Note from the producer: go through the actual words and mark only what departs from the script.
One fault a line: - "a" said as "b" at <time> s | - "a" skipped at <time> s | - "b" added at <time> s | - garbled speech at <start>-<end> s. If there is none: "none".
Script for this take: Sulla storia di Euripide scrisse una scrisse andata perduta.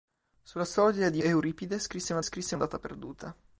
none